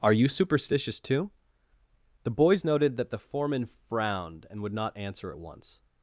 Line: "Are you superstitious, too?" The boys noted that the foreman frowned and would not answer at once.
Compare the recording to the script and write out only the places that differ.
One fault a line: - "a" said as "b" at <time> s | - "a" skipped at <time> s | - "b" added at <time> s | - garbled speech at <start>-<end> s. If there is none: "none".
none